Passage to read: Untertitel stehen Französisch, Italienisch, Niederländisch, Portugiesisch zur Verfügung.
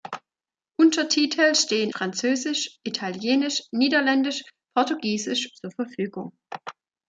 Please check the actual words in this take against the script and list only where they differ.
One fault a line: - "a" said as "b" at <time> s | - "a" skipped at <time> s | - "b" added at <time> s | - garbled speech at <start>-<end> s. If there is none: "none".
none